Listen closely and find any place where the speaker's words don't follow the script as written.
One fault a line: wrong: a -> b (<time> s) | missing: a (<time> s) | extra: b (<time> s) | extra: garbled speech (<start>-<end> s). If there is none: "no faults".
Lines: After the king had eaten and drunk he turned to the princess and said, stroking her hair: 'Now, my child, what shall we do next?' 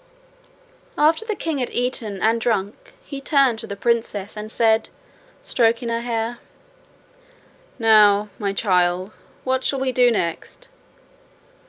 no faults